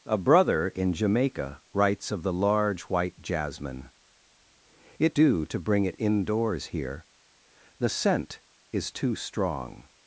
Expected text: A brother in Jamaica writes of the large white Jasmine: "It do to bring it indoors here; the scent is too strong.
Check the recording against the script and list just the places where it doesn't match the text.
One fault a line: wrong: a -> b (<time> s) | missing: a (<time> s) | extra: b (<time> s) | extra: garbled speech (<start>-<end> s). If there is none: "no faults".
no faults